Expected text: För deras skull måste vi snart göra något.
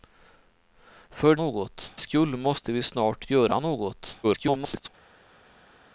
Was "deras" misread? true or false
true